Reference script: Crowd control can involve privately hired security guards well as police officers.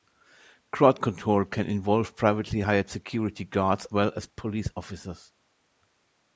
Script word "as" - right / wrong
right